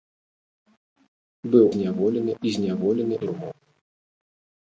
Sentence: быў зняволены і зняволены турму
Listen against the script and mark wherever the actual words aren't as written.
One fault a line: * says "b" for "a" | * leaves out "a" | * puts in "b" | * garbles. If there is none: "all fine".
all fine